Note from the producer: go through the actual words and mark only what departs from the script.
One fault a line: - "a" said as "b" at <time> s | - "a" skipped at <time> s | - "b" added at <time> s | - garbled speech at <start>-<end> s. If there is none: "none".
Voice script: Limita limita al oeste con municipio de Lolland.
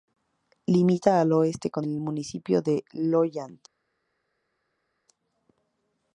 - "limita" skipped at 1.2 s
- "el" added at 1.8 s